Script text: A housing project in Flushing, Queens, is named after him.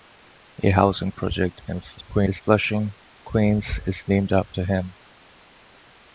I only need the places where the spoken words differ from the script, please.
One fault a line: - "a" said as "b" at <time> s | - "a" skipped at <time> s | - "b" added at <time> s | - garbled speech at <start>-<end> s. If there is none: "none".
- garbled speech at 2.0-2.4 s